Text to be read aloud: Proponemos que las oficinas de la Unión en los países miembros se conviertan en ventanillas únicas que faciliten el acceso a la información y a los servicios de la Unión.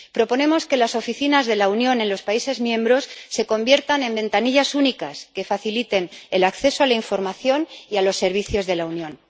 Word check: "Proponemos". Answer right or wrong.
right